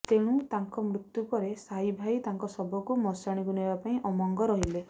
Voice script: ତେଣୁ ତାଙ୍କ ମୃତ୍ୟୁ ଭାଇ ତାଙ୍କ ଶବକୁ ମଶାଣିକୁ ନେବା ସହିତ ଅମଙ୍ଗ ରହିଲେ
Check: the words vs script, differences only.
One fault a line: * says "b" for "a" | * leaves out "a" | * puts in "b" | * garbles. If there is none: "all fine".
* puts in "ପରେ ସାହି"
* says "ପାଇଁ" for "ସହିତ"